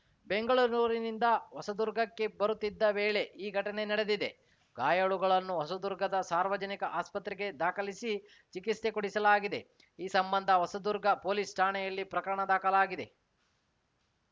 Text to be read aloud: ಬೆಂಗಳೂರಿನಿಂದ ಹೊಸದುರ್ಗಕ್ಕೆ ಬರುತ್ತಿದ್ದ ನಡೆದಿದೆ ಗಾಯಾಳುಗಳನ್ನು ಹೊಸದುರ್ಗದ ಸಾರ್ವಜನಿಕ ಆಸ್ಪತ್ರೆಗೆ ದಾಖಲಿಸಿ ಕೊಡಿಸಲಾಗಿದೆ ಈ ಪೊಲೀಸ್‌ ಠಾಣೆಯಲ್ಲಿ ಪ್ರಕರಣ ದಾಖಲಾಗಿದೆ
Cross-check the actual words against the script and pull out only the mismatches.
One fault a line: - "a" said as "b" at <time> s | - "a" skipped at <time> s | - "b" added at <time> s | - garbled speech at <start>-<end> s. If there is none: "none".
- "ವೇಳೆ ಈ ಘಟನೆ" added at 2.9 s
- "ಚಿಕಿತ್ಸೆ" added at 8.5 s
- "ಸಂಬಂಧ ಹೊಸದುರ್ಗ" added at 10.1 s